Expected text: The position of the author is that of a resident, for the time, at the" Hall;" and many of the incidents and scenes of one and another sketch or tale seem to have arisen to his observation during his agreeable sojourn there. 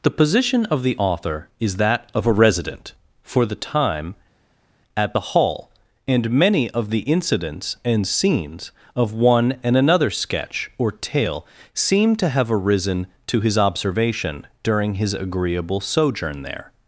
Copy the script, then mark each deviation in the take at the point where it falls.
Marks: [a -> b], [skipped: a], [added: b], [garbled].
The position of the author is that of a resident, for the time, at the" Hall;" and many of the incidents and scenes of one and another sketch or tale seem to have arisen to his observation during his agreeable sojourn there.